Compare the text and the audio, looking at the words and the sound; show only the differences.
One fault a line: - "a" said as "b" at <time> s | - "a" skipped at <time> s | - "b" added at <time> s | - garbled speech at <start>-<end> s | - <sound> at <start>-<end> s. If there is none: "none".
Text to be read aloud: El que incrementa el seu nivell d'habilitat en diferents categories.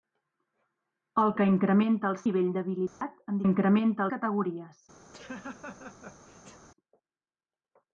- "seu" skipped at 2.2 s
- dropout at 2.9-3.0 s
- "diferents" said as "incrementa" at 3.5 s
- laugh at 5.1-6.7 s